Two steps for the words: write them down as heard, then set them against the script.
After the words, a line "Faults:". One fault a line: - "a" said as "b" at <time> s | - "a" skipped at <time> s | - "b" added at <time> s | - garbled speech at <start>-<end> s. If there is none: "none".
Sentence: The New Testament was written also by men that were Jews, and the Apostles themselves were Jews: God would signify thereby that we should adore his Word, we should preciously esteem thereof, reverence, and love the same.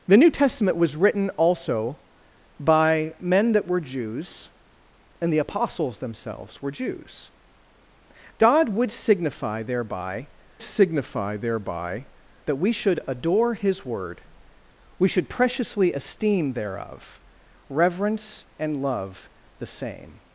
The New Testament was written also by men that were Jews, and the Apostles themselves were Jews: God would signify thereby signify thereby that we should adore his Word, we should preciously esteem thereof, reverence, and love the same.
Faults:
- "signify thereby" added at 10.6 s